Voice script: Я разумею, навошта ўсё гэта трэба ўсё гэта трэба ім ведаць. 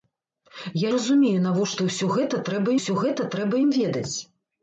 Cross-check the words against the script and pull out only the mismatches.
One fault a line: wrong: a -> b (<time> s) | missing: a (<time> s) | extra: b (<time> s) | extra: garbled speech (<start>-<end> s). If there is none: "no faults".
no faults